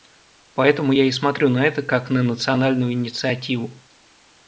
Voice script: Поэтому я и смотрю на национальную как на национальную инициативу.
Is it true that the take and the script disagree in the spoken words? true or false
true